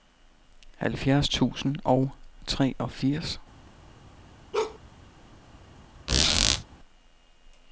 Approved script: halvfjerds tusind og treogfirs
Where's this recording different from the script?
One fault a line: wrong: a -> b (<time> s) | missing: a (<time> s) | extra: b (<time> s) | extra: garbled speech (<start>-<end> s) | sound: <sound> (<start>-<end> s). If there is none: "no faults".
sound: bark (4.5-4.8 s)
sound: squeak (6.1-6.6 s)